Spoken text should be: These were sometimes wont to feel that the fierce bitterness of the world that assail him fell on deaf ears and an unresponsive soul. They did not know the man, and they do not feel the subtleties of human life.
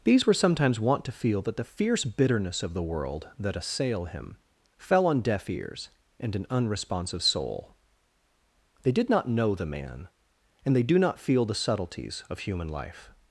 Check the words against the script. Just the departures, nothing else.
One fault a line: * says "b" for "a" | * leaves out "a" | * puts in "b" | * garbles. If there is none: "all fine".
all fine